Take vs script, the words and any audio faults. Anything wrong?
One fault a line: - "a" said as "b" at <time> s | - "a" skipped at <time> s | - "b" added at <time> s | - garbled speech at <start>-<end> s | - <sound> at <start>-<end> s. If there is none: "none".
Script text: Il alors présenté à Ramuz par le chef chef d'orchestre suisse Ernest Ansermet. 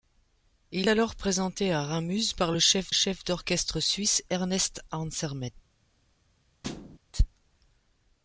- thud at 6.6-7.0 s